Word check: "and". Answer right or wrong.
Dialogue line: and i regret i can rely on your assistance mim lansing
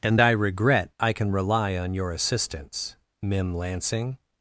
right